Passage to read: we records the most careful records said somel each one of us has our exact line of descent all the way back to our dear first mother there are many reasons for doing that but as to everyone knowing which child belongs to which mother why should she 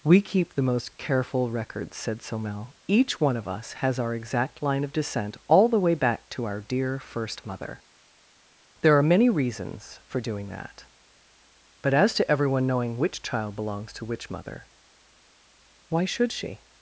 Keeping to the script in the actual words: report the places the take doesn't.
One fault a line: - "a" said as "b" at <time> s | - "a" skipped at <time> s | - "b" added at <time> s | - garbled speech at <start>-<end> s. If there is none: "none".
- "records" said as "keep" at 0.2 s